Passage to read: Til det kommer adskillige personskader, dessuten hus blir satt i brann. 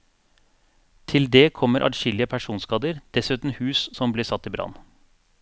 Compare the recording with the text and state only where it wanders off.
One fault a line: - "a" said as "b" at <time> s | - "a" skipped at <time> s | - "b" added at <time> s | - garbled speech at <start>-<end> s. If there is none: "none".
- "som" added at 4.0 s